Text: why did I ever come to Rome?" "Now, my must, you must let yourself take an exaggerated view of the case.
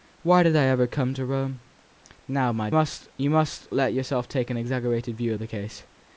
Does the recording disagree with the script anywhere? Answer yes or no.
no